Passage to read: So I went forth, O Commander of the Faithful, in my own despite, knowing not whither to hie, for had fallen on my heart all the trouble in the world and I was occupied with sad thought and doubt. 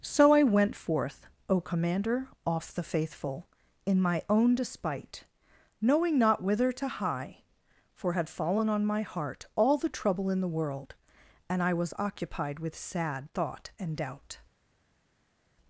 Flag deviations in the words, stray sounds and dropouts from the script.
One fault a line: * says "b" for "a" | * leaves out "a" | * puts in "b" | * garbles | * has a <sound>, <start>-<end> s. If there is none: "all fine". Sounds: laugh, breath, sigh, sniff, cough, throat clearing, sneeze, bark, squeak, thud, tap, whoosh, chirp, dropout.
* says "off" for "of"